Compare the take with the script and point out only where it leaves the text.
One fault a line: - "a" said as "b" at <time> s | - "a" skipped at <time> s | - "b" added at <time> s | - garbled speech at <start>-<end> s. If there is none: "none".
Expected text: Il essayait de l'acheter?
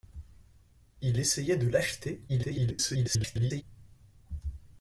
- garbled speech at 2.3-3.6 s